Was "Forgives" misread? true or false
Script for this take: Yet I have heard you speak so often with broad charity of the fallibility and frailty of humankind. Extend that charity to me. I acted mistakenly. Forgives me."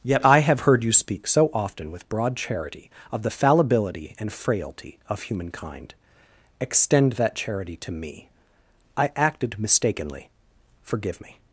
true